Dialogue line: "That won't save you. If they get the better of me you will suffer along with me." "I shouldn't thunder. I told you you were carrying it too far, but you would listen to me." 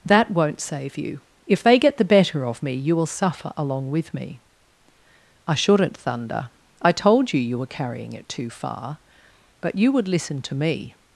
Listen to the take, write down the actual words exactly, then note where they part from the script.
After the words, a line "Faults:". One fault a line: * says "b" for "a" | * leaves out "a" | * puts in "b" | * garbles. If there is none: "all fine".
"That won't save you. If they get the better of me you will suffer along with me." "I shouldn't thunder. I told you you were carrying it too far, but you would listen to me."
Faults:
all fine